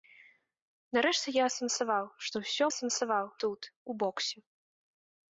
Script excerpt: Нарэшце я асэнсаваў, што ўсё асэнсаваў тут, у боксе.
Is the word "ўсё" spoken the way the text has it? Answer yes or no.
yes